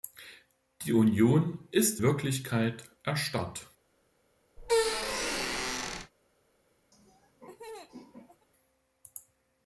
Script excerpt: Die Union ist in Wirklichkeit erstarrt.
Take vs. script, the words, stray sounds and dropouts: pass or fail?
fail